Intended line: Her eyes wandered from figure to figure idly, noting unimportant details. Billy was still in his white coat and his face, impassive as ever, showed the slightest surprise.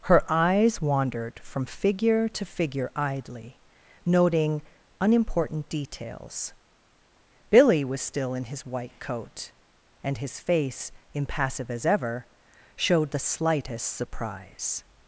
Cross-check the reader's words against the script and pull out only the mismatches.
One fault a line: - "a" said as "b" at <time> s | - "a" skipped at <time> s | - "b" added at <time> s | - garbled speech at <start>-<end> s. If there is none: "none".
none